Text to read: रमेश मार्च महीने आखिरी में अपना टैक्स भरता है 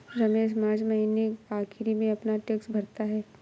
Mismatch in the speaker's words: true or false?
false